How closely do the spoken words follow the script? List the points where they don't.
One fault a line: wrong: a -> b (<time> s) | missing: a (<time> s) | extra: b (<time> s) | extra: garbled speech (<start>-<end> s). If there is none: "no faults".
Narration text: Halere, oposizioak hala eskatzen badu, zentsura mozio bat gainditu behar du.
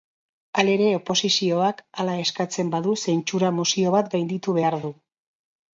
no faults